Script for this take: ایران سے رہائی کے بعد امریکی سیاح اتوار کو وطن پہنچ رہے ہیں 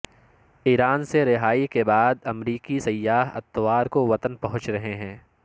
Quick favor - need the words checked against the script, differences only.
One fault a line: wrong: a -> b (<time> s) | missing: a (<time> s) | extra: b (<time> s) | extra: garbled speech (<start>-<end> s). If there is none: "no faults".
no faults